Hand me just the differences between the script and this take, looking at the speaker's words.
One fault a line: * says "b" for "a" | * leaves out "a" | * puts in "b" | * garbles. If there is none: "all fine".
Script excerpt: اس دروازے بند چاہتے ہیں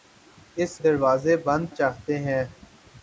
all fine